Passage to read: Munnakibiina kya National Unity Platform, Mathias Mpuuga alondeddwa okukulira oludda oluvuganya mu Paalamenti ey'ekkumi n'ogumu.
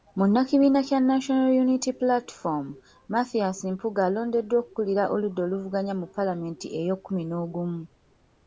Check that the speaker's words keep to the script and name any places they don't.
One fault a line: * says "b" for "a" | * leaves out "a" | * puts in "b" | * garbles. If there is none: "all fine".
all fine